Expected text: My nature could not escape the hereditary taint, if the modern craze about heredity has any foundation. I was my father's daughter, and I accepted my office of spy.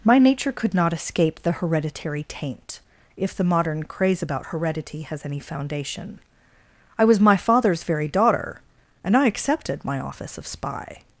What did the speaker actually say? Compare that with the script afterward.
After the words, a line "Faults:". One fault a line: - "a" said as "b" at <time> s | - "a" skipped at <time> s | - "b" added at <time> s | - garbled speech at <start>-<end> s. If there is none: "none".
My nature could not escape the hereditary taint, if the modern craze about heredity has any foundation. I was my father's very daughter, and I accepted my office of spy.
Faults:
- "very" added at 7.8 s